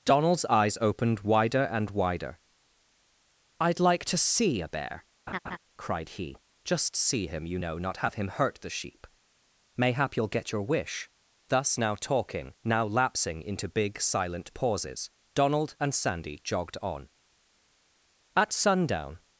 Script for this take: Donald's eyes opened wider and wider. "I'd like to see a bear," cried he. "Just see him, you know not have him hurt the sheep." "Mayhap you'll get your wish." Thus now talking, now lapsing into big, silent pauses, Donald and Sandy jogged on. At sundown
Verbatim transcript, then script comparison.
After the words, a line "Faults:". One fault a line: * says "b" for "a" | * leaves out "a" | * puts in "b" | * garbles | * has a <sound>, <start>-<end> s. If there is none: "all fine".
Donald's eyes opened wider and wider. "I'd like to see a bear," cried he. "Just see him, you know not have him hurt the sheep." "Mayhap you'll get your wish." Thus now talking, now lapsing into big, silent pauses, Donald and Sandy jogged on. At sundown
Faults:
* has a laugh, 5.3-5.6 s